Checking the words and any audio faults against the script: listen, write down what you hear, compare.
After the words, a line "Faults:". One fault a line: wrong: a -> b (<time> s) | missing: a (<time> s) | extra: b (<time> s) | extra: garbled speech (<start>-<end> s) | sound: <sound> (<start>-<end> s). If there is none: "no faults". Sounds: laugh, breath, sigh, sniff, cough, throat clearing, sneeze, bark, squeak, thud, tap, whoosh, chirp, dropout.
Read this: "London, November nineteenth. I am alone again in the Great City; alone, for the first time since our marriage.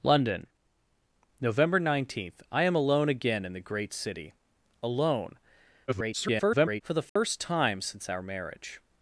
"London, November nineteenth. I am alone again in the Great City; alone, [garbled] for the first time since our marriage.
Faults:
extra: garbled speech (5.9-6.8 s)
sound: dropout (7.1-7.2 s)